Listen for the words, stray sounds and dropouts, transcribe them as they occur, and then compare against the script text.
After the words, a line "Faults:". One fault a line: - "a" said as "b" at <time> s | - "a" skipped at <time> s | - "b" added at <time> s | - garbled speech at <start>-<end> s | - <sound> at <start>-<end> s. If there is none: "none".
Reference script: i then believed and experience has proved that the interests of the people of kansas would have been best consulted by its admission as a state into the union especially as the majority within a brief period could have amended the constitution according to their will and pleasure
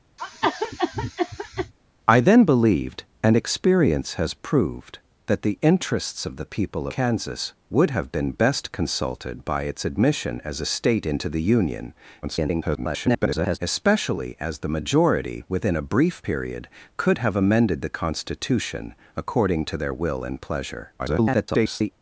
i then believed and experience has proved that the interests of the people kansas would have been best consulted by its admission as a state into the union [garbled] especially as the majority within a brief period could have amended the constitution according to their will and pleasure [garbled]
Faults:
- cough at 0.2-1.7 s
- "of" skipped at 6.9 s
- garbled speech at 12.2-13.6 s
- garbled speech at 21.0-21.9 s